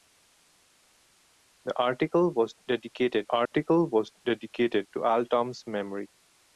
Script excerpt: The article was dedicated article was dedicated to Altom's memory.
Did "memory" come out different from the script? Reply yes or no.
no